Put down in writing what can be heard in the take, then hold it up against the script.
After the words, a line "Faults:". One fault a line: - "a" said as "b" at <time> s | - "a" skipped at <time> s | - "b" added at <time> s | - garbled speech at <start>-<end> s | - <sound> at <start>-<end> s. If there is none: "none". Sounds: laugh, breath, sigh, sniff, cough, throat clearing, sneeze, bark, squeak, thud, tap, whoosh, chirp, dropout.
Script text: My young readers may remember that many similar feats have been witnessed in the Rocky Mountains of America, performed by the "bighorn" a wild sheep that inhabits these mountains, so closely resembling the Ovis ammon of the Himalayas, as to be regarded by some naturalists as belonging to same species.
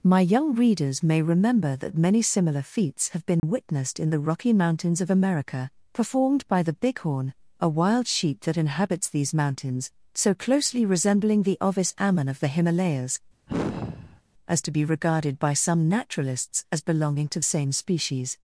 My young readers may remember that many similar feats have been witnessed in the Rocky Mountains of America, performed by the "bighorn" a wild sheep that inhabits these mountains, so closely resembling the Ovis ammon of the Himalayas, as to be regarded by some naturalists as belonging to same species.
Faults:
- dropout at 3.4-3.4 s
- sigh at 13.5-14.2 s